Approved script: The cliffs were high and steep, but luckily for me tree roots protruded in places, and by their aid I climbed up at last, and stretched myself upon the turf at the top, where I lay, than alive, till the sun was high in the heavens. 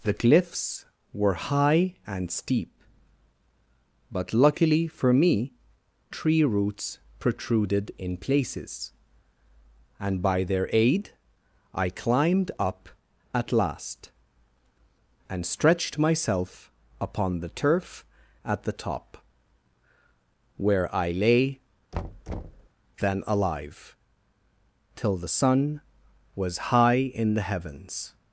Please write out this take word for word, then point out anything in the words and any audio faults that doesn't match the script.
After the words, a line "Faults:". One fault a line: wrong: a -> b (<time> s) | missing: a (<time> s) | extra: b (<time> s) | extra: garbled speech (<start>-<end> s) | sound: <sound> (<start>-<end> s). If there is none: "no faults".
The cliffs were high and steep, but luckily for me tree roots protruded in places, and by their aid I climbed up at last, and stretched myself upon the turf at the top, where I lay, than alive, till the sun was high in the heavens.
Faults:
sound: thud (21.9-22.7 s)